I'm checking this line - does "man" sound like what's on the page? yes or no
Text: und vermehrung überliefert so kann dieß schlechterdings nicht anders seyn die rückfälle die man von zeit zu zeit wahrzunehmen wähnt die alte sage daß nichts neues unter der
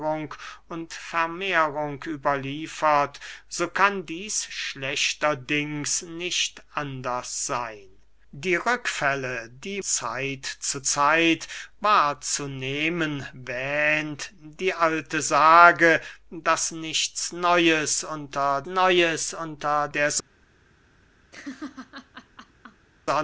no